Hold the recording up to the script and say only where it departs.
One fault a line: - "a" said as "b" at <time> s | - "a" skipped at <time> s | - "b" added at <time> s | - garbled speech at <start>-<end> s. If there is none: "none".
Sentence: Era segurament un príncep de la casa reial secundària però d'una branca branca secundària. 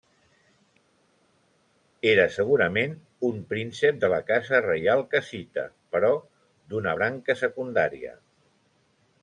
- "secundària" said as "cassita" at 5.1 s
- "branca" skipped at 7.4 s